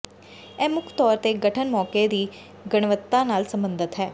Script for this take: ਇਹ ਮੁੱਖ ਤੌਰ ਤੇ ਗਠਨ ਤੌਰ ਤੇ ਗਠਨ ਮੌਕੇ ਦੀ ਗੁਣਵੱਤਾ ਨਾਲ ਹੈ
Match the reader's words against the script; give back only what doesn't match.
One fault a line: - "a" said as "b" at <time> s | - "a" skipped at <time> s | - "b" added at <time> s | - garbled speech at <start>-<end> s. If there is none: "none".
- "ਤੌਰ ਤੇ ਗਠਨ" skipped at 1.7 s
- "ਸਬੰਧਤ" added at 3.5 s